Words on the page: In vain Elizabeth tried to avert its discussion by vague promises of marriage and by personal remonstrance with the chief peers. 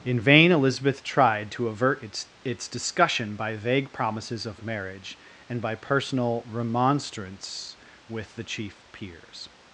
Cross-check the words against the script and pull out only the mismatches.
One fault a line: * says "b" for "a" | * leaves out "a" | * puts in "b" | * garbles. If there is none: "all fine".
* puts in "its"